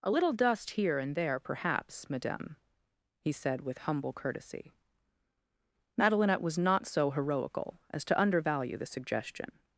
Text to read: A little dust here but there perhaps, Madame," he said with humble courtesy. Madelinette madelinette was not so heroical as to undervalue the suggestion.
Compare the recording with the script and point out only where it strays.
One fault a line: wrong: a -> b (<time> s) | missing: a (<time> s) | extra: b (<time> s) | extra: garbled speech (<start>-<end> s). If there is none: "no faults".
wrong: but -> and (1.0 s)
missing: madelinette (6.4 s)